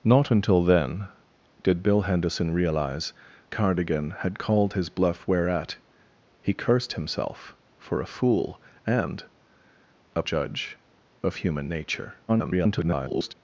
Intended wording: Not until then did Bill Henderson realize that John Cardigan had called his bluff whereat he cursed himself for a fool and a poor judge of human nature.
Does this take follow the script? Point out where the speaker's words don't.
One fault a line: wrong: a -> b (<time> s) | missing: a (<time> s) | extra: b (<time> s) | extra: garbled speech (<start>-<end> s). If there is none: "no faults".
missing: that John (3.1 s)
missing: poor (10.2 s)
extra: garbled speech (12.3-13.3 s)